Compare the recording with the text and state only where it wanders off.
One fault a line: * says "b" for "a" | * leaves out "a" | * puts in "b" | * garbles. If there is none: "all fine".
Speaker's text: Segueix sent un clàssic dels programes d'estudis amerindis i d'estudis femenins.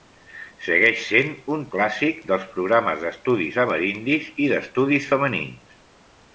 all fine